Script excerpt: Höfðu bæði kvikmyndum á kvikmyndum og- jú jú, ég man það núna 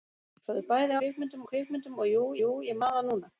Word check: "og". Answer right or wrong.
right